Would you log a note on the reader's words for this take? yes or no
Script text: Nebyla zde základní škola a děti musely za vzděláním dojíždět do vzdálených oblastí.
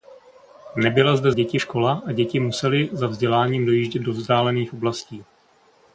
yes